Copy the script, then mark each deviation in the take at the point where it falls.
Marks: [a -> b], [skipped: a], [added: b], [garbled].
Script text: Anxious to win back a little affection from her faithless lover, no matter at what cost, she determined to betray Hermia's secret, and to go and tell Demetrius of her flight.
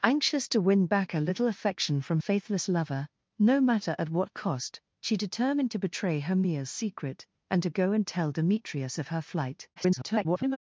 Anxious to win back a little affection from [skipped: her] faithless lover, no matter at what cost, she determined to betray Hermia's secret, and to go and tell Demetrius of her flight. [garbled]